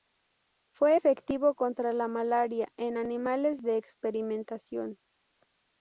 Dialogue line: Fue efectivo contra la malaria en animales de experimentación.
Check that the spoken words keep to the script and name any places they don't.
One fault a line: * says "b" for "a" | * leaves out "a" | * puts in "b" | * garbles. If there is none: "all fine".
all fine